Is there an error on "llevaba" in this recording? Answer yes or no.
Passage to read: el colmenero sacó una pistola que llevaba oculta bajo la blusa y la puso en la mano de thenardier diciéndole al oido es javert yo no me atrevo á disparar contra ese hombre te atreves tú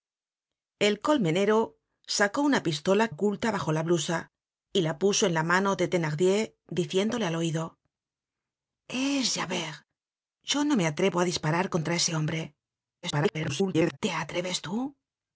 yes